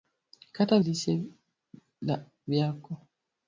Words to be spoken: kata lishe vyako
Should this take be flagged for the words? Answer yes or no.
no